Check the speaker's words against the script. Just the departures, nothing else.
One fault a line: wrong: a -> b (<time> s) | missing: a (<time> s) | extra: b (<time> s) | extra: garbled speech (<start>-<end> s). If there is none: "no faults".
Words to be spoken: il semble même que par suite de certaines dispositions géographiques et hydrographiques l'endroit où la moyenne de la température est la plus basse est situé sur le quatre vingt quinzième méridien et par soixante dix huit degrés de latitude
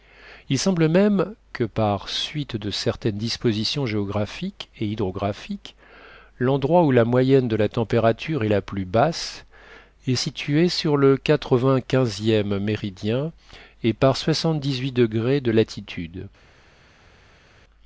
no faults